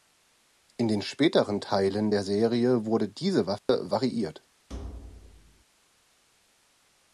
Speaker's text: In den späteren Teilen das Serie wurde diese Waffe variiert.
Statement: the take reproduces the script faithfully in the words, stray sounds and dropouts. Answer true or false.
false